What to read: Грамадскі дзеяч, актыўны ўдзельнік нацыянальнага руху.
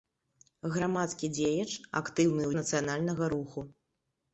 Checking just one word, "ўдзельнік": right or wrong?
wrong